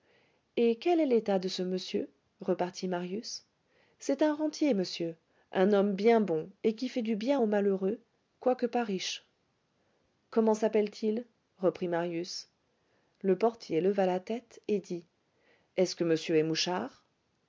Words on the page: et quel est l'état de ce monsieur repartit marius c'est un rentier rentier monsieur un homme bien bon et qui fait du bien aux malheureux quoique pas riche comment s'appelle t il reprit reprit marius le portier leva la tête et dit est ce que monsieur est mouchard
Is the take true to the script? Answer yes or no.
no